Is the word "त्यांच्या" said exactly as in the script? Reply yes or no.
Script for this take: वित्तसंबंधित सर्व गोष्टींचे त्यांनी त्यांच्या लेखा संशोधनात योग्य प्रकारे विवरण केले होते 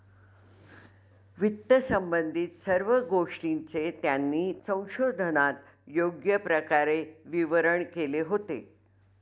no